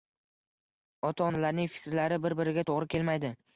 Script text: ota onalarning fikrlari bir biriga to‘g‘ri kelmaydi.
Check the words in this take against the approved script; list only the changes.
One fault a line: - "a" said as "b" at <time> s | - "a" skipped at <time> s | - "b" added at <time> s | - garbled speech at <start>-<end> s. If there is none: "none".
none